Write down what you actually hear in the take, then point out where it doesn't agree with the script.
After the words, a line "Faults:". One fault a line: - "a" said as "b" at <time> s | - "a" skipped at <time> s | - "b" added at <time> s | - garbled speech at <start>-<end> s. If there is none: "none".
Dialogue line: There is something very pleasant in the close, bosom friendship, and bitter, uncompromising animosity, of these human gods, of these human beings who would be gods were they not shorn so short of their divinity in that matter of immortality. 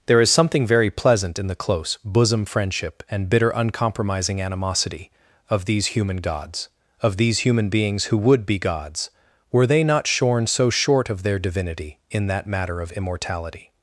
There is something very pleasant in the close, bosom friendship, and bitter, uncompromising animosity, of these human gods, of these human beings who would be gods were they not shorn so short of their divinity in that matter of immortality.
Faults:
none